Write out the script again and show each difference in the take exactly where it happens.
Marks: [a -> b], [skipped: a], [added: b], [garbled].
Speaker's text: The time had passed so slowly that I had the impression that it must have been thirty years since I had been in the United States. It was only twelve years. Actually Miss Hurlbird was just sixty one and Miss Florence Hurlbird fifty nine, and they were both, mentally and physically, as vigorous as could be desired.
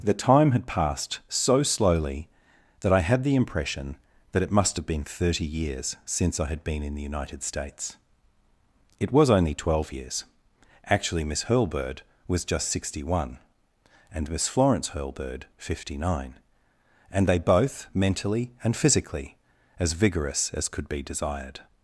The time had passed so slowly that I had the impression that it must have been thirty years since I had been in the United States. It was only twelve years. Actually Miss Hurlbird was just sixty one and Miss Florence Hurlbird fifty nine, and they [skipped: were] both, mentally and physically, as vigorous as could be desired.